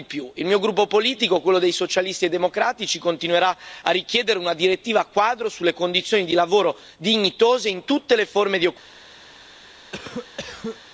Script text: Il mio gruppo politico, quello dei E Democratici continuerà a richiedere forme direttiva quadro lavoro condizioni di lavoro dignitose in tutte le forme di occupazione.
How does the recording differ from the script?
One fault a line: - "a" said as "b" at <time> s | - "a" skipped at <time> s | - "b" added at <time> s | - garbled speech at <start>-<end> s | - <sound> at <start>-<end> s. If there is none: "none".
- "Socialisti" added at 1.7 s
- "forme" said as "una" at 4.4 s
- "lavoro" said as "sulle" at 5.5 s
- cough at 9.9-10.8 s